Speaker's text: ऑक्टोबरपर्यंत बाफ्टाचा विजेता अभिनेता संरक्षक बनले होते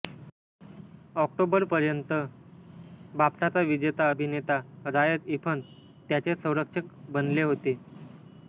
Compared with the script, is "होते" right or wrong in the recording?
right